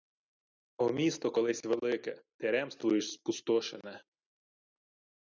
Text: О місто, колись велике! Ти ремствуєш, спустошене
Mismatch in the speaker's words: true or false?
false